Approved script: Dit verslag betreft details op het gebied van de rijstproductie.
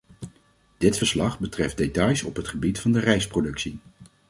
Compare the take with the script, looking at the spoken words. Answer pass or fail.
pass